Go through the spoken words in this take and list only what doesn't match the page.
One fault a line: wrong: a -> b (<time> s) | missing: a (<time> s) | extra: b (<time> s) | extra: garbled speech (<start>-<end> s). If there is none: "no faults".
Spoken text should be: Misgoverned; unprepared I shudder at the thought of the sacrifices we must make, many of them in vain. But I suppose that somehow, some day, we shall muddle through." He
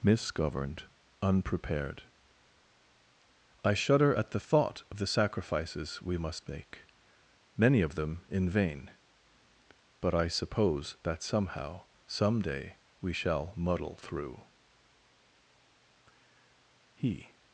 no faults